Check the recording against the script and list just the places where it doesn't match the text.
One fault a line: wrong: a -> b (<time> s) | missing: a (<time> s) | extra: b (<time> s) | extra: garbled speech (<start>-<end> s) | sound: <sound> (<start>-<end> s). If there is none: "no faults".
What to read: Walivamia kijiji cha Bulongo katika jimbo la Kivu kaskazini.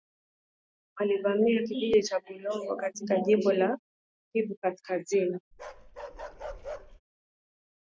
sound: bark (5.5-7.0 s)